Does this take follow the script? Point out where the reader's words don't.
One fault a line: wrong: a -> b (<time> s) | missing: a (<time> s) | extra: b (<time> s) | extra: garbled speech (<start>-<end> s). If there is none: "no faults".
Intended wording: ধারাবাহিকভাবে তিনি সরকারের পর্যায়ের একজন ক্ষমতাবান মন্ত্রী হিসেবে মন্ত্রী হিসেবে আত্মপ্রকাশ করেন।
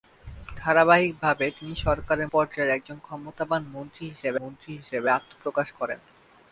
no faults